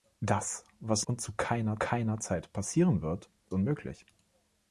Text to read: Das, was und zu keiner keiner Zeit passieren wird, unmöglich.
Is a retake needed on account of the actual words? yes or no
no